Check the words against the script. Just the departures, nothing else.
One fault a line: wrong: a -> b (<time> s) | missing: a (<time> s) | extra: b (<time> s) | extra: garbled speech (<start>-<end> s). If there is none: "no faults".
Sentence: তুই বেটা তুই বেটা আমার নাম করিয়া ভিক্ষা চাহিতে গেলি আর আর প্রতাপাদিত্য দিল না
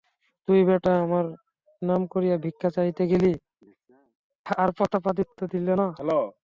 missing: তুই বেটা (0.9 s)
missing: আর (4.7 s)